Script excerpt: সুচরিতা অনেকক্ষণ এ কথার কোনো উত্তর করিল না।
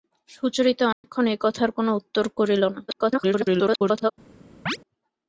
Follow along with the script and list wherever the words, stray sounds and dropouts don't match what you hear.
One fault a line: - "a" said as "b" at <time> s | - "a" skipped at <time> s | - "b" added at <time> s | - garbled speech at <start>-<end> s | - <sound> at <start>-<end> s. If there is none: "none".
- dropout at 0.9-1.0 s
- garbled speech at 2.9-4.1 s
- chirp at 4.7-4.8 s